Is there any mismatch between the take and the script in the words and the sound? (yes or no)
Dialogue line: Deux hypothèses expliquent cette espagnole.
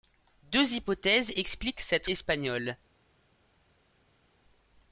no